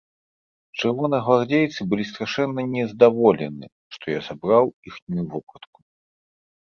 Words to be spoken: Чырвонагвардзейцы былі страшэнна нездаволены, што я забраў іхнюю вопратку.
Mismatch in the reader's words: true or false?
false